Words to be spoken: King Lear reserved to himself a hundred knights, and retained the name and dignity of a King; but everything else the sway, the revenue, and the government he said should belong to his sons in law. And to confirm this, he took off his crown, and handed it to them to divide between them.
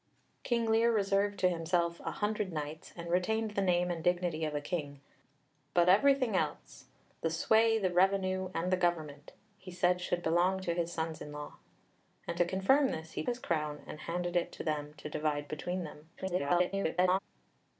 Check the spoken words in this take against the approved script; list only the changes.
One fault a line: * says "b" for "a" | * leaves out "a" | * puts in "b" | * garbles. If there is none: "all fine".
* leaves out "took off"
* garbles